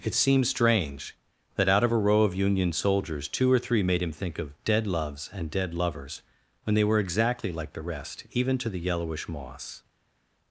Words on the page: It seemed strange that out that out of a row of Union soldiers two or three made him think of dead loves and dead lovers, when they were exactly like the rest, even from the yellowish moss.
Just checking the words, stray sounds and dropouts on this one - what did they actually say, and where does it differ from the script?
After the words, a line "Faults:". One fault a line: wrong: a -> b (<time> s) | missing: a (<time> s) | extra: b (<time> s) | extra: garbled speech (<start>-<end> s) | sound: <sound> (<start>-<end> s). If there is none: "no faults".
It seemed strange that out of a row of Union soldiers two or three made him think of dead loves and dead lovers, when they were exactly like the rest, even to the yellowish moss.
Faults:
missing: that out (1.8 s)
wrong: from -> to (8.6 s)